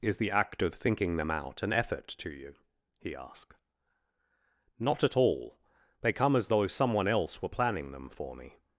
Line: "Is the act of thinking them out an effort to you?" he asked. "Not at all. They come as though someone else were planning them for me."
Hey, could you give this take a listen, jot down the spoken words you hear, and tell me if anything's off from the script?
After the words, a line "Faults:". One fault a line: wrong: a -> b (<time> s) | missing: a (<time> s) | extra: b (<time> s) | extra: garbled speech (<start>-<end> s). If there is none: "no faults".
"Is the act of thinking them out an effort to you?" he asked. "Not at all. They come as though someone else were planning them for me."
Faults:
no faults